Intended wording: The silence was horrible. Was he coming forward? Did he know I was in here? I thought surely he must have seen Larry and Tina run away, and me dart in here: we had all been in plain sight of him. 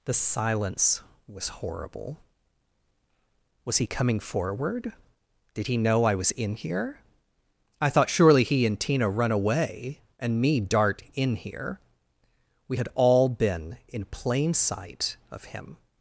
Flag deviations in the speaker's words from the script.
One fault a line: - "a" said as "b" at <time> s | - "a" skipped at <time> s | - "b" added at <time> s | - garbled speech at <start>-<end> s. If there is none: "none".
- "must have seen Larry" skipped at 8.7 s